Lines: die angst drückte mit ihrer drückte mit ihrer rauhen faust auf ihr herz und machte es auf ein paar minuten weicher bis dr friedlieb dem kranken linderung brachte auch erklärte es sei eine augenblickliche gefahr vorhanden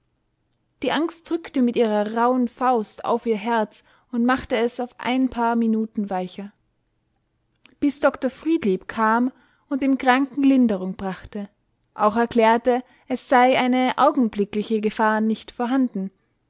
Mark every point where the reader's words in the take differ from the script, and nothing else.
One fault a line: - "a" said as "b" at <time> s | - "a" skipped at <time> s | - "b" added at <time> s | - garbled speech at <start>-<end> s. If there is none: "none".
- "drückte mit ihrer" skipped at 2.1 s
- "kam und" added at 8.9 s
- "nicht" added at 15.2 s